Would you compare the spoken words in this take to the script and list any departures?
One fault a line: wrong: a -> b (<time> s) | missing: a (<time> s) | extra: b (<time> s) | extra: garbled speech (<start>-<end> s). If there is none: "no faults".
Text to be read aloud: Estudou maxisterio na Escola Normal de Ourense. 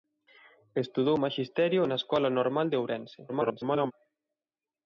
extra: garbled speech (3.3-3.9 s)